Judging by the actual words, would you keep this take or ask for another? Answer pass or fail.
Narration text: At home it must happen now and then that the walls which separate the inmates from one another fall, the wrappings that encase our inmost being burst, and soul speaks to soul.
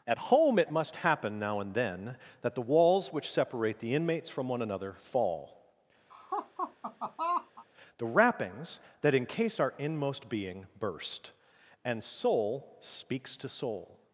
pass